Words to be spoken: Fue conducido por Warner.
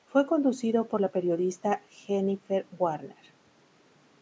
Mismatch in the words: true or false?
true